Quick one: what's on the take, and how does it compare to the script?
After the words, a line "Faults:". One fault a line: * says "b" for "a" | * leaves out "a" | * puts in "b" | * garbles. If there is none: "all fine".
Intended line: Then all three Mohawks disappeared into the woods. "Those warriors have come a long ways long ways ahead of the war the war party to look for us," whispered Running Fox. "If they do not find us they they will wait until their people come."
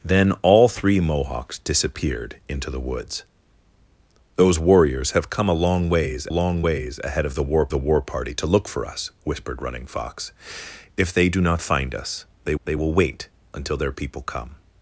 Then all three Mohawks disappeared into the woods. "Those warriors have come a long ways long ways ahead of the war the war party to look for us," whispered Running Fox. "If they do not find us they they will wait until their people come."
Faults:
all fine